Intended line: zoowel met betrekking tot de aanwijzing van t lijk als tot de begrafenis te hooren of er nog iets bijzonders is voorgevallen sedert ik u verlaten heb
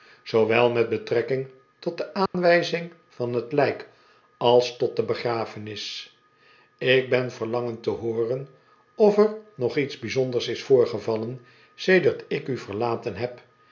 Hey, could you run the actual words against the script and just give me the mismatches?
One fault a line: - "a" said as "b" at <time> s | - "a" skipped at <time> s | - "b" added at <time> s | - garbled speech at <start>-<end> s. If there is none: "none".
- "ik ben verlangend" added at 6.8 s